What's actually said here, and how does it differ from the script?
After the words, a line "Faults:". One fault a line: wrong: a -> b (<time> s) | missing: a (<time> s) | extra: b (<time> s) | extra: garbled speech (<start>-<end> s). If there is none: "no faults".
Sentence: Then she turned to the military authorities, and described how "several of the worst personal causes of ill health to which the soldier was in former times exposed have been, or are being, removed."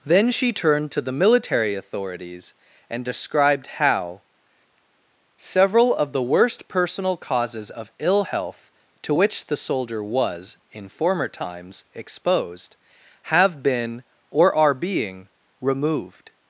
Then she turned to the military authorities, and described how "several of the worst personal causes of ill health to which the soldier was in former times exposed have been, or are being, removed."
Faults:
no faults